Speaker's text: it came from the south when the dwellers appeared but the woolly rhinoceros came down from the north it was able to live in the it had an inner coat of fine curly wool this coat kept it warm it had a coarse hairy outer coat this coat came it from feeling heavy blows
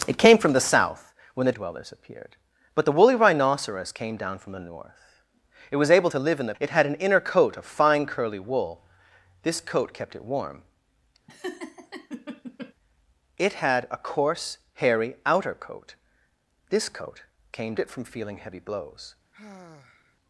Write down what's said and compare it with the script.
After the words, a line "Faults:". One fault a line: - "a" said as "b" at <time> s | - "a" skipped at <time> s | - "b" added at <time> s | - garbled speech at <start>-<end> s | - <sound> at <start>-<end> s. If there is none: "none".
it came from the south when the dwellers appeared but the woolly rhinoceros came down from the north it was able to live in the it had an inner coat of fine curly wool this coat kept it warm it had a coarse hairy outer coat this coat came it from feeling heavy blows
Faults:
- laugh at 11.3-12.7 s
- sigh at 19.3-20.2 s